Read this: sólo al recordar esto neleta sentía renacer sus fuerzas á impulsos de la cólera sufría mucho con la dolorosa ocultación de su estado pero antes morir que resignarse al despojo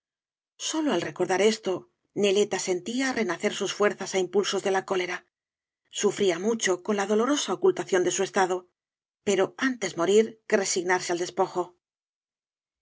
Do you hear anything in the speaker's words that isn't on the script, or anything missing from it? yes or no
no